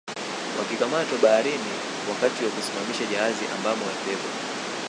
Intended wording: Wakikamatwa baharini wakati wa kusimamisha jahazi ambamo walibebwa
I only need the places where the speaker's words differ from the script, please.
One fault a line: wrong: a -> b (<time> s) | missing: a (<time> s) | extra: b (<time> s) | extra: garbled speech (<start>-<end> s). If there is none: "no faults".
no faults